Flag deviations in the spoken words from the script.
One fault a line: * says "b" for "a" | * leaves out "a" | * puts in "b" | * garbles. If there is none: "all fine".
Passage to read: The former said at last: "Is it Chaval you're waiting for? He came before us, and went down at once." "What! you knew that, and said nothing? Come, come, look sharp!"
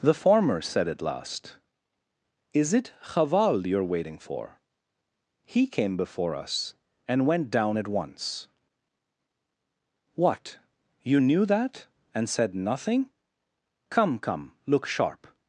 all fine